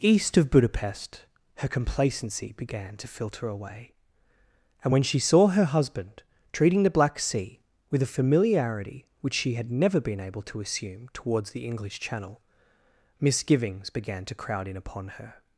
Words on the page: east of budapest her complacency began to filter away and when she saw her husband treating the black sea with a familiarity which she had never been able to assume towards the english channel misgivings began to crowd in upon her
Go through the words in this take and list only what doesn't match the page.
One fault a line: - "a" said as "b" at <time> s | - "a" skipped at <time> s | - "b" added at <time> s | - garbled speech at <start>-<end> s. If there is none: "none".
none